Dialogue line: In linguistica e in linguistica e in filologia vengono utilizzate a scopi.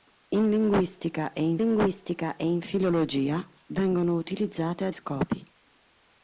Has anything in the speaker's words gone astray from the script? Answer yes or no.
no